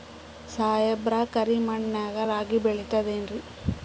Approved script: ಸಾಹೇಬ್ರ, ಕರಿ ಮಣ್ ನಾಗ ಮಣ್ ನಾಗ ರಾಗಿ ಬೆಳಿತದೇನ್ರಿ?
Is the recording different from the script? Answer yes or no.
yes